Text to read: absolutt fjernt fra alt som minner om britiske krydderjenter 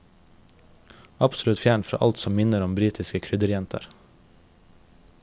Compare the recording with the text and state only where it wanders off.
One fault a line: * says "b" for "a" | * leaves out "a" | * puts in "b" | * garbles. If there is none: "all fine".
all fine